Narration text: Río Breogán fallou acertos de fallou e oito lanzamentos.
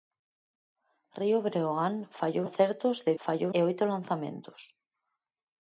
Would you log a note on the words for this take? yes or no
no